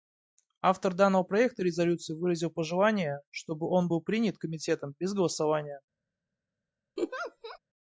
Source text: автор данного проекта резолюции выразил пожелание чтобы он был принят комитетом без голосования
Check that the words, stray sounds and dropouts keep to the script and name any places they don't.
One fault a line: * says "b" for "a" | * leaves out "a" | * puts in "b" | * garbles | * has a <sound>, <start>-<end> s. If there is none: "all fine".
* has a laugh, 7.0-7.6 s